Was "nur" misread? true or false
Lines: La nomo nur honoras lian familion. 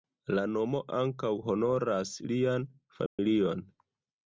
true